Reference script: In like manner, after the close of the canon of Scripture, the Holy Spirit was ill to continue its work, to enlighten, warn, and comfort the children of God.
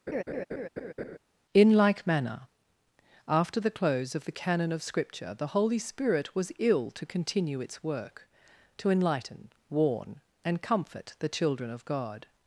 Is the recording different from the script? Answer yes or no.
no